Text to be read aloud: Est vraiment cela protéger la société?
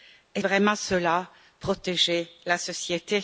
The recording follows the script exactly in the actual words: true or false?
true